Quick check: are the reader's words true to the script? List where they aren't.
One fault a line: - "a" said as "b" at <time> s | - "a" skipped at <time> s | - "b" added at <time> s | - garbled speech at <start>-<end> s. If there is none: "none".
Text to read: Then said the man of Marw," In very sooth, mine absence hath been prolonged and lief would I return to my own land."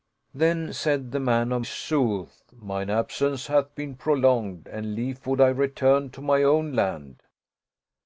- "Marw In very" skipped at 1.6 s